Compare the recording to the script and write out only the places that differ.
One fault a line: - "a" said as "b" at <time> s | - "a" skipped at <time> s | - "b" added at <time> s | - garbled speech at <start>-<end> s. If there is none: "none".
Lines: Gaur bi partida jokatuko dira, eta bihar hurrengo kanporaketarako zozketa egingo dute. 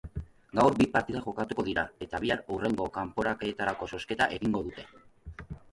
none